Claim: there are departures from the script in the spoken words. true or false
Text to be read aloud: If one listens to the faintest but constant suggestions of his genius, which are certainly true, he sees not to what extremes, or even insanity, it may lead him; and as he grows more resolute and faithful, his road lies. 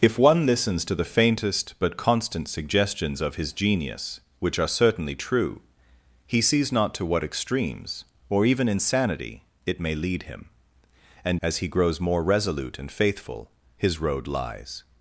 false